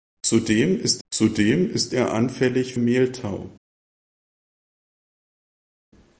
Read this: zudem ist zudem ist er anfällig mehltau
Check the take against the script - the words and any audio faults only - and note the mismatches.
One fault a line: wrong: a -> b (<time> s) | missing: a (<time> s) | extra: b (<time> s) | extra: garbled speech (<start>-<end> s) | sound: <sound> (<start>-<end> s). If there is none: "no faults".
no faults